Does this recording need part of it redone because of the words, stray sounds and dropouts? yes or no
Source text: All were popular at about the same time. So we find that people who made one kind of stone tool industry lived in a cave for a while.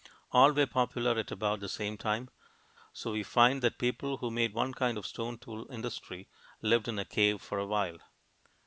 no